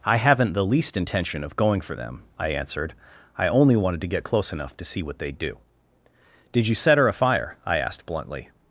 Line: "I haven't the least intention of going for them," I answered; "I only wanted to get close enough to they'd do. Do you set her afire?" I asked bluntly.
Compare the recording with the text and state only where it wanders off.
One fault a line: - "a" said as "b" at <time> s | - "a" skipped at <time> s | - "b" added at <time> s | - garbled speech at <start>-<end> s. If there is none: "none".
- "see what" added at 4.8 s
- "Do" said as "Did" at 6.5 s